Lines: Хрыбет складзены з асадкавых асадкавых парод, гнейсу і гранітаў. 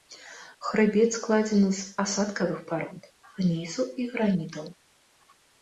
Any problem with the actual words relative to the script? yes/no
yes